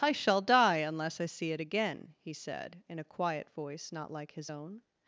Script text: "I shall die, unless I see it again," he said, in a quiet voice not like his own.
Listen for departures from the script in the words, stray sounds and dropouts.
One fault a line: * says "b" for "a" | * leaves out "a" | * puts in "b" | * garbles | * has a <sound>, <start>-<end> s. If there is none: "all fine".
all fine